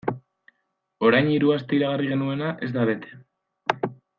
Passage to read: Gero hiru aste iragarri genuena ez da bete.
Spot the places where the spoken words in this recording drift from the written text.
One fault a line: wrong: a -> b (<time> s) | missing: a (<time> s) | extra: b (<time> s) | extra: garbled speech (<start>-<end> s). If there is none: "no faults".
wrong: Gero -> Orain (1.1 s)